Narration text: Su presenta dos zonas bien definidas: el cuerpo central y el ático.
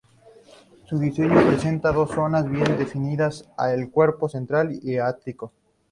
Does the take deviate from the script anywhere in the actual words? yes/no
yes